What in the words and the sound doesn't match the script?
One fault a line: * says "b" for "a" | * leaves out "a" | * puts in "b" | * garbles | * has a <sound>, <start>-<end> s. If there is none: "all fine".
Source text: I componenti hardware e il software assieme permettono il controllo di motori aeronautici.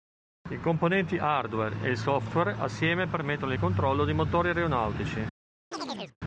* has a chirp, 5.7-6.2 s